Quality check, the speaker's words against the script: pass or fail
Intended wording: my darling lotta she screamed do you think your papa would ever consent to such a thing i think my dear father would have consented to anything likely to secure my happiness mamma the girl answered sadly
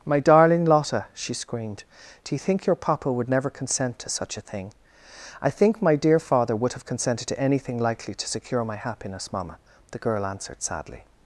fail